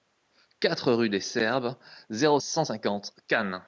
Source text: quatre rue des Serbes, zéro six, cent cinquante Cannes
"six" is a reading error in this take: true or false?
true